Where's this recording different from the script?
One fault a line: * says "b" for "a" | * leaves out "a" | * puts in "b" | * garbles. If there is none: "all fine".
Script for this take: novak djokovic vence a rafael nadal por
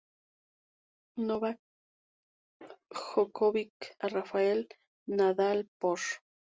* leaves out "vence"